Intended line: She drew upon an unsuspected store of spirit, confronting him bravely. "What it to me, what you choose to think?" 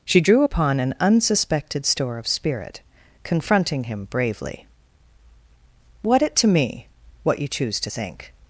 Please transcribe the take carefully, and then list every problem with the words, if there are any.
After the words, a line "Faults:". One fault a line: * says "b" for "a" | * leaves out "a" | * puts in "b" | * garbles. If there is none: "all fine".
She drew upon an unsuspected store of spirit, confronting him bravely. "What it to me, what you choose to think?"
Faults:
all fine